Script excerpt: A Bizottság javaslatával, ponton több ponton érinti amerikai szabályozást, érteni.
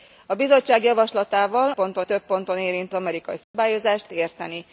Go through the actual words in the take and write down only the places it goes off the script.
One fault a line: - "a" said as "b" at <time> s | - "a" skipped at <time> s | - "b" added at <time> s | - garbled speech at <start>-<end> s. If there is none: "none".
none